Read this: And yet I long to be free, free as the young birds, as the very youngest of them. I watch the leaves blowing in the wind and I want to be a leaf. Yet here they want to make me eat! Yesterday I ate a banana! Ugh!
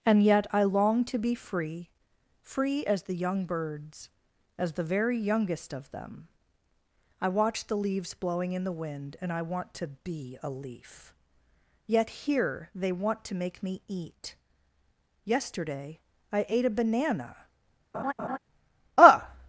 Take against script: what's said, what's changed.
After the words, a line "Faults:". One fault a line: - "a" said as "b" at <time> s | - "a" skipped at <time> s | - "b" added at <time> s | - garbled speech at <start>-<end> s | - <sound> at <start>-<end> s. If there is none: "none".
And yet I long to be free, free as the young birds, as the very youngest of them. I watch the leaves blowing in the wind and I want to be a leaf. Yet here they want to make me eat! Yesterday I ate a banana! Ugh!
Faults:
- laugh at 17.9-18.4 s